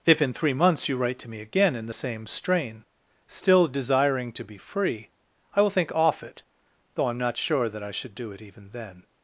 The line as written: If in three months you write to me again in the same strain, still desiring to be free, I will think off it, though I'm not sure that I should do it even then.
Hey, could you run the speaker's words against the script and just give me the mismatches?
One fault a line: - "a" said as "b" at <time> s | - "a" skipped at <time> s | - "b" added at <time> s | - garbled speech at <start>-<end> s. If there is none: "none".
none